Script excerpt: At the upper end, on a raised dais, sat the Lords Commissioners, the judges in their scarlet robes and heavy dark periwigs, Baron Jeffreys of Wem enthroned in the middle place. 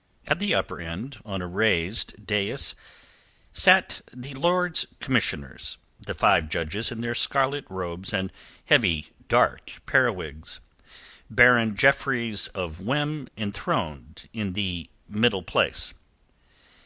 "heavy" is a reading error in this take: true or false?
false